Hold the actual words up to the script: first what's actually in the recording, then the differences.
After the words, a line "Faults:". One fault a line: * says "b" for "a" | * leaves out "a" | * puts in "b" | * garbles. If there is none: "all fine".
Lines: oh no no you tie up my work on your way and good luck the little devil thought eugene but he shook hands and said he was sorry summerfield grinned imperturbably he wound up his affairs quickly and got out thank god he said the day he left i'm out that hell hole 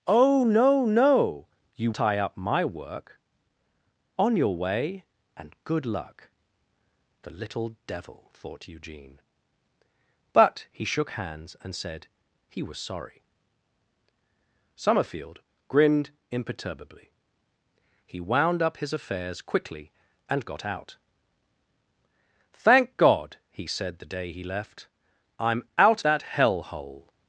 oh no no you tie up my work on your way and good luck the little devil thought eugene but he shook hands and said he was sorry summerfield grinned imperturbably he wound up his affairs quickly and got out thank god he said the day he left i'm out that hell hole
Faults:
all fine